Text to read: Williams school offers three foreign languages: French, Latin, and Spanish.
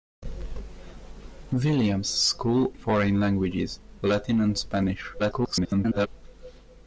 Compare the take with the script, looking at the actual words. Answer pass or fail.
fail